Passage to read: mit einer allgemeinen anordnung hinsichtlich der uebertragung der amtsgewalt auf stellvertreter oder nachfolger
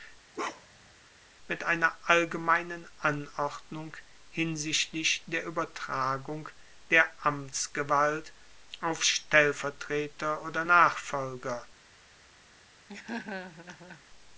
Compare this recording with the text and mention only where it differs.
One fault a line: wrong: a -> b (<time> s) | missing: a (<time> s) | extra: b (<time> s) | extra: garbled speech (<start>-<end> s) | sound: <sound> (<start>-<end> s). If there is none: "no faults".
sound: bark (0.3-0.9 s)
sound: laugh (12.9-14.0 s)